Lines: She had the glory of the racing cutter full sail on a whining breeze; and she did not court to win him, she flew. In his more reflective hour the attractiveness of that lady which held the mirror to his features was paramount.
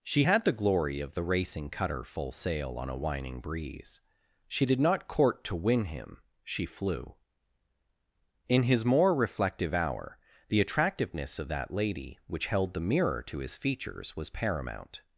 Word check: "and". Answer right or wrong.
wrong